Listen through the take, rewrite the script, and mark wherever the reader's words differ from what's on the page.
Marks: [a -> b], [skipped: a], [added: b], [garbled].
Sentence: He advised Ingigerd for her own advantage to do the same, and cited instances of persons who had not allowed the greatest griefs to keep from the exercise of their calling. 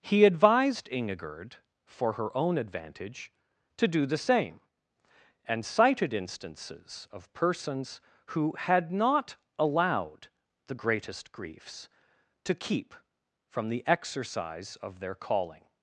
He advised Ingigerd for her own advantage to do the same, and cited instances of persons who had not allowed the greatest griefs to keep from the exercise of their calling.